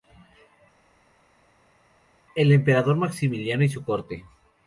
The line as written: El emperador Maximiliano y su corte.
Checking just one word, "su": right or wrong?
right